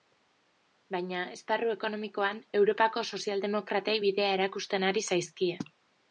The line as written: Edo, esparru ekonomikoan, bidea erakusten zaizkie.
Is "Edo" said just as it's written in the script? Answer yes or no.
no